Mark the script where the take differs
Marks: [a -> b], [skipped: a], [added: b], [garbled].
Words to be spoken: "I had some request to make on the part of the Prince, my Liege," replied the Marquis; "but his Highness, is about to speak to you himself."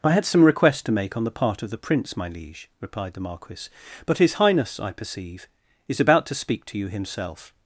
"I had some request to make on the part of the Prince, my Liege," replied the Marquis; "but his Highness, [added: I perceive] is about to speak to you himself."